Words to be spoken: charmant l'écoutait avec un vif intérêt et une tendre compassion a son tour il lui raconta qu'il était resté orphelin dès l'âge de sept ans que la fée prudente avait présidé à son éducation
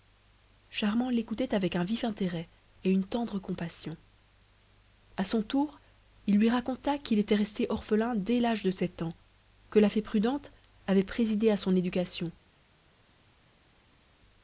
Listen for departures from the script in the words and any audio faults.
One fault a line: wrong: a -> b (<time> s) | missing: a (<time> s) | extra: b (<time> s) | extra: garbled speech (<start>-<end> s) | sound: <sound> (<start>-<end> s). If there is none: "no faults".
no faults